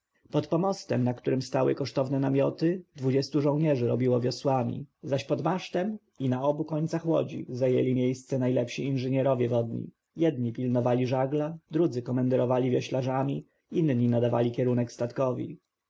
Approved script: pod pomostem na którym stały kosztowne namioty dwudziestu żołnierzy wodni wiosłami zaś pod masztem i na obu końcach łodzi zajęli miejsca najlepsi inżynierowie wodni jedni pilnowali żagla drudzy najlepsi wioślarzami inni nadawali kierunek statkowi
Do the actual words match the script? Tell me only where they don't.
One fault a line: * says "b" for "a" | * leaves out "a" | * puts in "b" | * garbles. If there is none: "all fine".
* says "robiło" for "wodni"
* says "komenderowali" for "najlepsi"